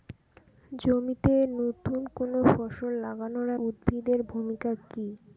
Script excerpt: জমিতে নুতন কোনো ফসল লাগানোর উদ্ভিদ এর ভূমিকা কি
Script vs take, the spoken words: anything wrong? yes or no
no